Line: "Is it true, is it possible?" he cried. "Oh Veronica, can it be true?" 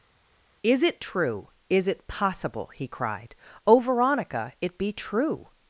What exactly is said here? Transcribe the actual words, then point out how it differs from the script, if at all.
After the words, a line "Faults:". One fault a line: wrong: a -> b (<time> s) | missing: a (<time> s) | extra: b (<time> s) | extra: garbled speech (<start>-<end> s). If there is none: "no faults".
"Is it true, is it possible?" he cried. "Oh Veronica, it be true?"
Faults:
missing: can (4.5 s)